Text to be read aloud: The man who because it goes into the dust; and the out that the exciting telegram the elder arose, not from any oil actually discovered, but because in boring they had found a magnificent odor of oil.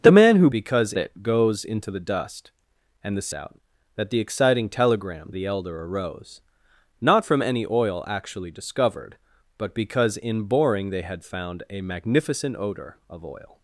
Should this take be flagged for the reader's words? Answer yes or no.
no